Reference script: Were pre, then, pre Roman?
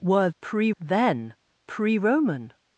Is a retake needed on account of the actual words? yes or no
no